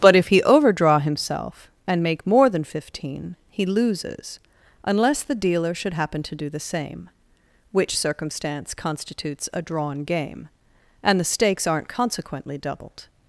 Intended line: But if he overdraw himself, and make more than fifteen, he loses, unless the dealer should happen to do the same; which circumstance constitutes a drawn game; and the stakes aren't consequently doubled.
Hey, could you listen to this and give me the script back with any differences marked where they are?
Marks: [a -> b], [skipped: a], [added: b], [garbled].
But if he overdraw himself, and make more than fifteen, he loses, unless the dealer should happen to do the same; which circumstance constitutes a drawn game; and the stakes aren't consequently doubled.